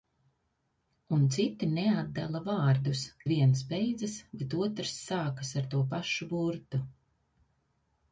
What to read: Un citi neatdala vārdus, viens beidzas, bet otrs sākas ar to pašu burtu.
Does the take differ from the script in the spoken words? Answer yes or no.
no